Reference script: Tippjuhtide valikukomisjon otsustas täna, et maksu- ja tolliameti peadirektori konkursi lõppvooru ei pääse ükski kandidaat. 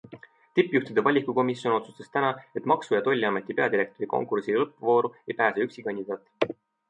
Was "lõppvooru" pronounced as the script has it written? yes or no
yes